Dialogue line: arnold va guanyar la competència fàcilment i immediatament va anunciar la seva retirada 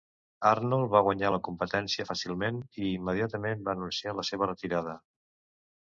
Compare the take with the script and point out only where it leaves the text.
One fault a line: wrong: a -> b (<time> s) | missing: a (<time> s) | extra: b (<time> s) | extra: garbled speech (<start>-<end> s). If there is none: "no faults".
no faults